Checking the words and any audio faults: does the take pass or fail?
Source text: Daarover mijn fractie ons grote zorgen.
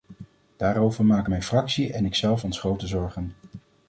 fail